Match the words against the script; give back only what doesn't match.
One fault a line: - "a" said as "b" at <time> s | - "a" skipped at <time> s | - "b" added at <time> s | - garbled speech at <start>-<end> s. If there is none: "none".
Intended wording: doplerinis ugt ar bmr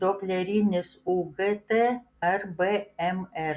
none